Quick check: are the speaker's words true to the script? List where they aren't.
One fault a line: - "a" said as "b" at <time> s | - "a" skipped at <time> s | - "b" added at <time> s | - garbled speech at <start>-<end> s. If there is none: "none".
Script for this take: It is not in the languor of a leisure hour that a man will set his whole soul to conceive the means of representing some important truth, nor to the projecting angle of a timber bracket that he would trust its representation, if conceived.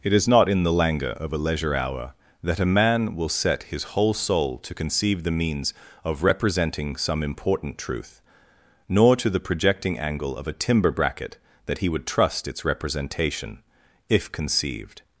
none